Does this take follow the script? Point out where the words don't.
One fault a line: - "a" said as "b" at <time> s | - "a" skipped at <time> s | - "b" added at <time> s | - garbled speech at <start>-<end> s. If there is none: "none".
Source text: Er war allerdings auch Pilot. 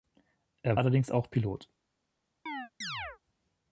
- "war" skipped at 0.8 s